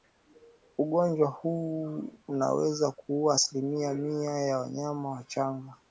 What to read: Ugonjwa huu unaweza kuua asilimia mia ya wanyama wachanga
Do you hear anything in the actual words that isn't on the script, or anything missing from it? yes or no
no